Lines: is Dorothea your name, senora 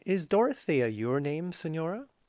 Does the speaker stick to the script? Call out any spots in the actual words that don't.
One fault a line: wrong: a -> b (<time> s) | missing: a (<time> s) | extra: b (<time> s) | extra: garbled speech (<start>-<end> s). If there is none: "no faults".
no faults